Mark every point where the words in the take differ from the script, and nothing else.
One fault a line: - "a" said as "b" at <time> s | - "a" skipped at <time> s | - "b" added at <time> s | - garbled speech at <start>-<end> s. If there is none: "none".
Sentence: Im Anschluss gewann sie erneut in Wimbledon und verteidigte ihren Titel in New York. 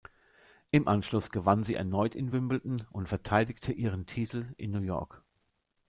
none